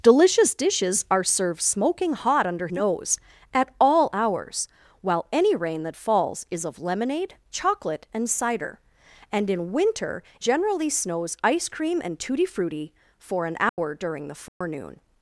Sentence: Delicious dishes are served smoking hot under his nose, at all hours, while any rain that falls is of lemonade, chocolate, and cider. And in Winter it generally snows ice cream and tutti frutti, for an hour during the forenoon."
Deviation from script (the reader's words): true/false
true